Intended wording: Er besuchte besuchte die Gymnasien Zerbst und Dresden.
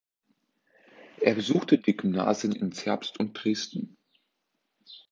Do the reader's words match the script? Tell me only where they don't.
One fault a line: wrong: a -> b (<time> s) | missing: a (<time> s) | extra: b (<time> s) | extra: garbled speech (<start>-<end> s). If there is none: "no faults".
missing: besuchte (1.8 s)
extra: in (2.5 s)